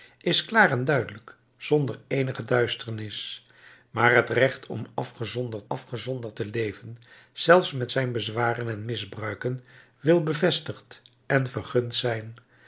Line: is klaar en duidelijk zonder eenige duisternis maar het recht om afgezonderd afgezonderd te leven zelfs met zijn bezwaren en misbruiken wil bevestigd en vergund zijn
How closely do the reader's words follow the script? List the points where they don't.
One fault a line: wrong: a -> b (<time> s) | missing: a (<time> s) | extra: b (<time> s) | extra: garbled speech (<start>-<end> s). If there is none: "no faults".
no faults